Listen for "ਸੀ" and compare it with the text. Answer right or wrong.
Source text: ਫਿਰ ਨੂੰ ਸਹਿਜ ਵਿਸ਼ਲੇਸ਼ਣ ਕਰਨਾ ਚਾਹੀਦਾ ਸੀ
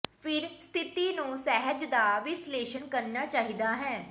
wrong